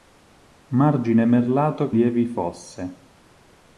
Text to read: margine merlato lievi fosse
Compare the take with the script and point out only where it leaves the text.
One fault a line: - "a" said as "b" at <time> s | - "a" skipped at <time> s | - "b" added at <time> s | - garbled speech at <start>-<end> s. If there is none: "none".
none